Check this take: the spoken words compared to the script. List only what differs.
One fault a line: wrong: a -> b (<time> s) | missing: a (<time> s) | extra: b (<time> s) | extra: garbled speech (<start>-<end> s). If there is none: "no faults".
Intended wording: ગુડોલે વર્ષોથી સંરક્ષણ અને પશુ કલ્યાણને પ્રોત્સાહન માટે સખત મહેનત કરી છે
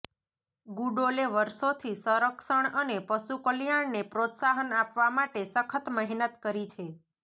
extra: આપવા (4.8 s)